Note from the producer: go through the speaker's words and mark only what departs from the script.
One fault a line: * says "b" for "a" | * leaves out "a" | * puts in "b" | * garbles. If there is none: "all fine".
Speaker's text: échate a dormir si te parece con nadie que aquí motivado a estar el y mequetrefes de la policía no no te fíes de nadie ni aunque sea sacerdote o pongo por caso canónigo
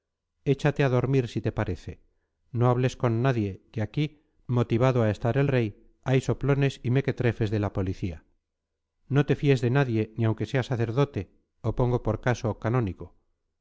* puts in "no hables"
* puts in "rey hay soplones"
* leaves out "no"